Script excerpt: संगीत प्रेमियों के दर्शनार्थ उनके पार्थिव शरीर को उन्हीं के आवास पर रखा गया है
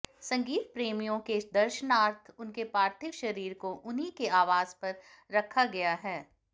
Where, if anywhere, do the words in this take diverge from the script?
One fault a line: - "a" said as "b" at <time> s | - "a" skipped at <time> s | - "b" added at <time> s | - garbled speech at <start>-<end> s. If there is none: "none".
none